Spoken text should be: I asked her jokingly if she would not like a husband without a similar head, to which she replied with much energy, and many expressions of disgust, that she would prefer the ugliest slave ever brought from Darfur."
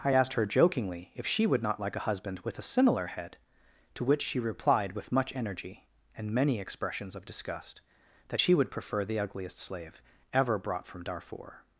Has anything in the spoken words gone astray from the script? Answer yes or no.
yes